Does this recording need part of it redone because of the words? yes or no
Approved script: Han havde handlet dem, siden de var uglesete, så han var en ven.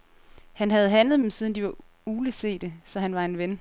no